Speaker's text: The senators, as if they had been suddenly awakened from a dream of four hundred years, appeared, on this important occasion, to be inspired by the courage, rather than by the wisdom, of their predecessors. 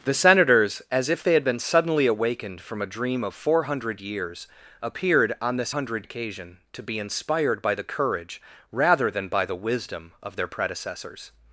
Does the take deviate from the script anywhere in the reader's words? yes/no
yes